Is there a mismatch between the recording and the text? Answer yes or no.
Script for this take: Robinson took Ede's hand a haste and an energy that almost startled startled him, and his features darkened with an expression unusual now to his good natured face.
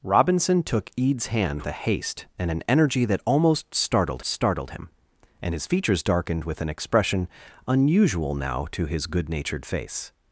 no